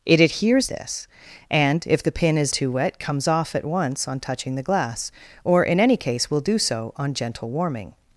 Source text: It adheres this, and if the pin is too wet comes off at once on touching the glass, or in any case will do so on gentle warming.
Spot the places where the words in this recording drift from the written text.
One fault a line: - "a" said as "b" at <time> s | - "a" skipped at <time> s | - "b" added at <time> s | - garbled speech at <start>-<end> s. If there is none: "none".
none